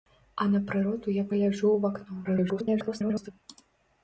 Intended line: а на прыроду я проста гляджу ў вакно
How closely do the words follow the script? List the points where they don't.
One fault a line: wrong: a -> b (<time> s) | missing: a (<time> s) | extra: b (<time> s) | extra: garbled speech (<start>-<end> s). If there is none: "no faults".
missing: проста (1.2 s)
extra: garbled speech (2.2-3.3 s)